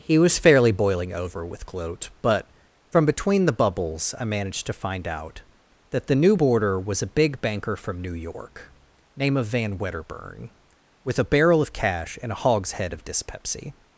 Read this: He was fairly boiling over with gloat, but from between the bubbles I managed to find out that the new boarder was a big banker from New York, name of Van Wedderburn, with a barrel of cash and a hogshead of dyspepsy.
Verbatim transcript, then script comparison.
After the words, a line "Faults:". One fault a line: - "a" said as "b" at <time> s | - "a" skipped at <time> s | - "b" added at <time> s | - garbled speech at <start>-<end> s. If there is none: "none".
He was fairly boiling over with gloat, but from between the bubbles I managed to find out that the new boarder was a big banker from New York, name of Van Wedderburn, with a barrel of cash and a hogshead of dyspepsy.
Faults:
none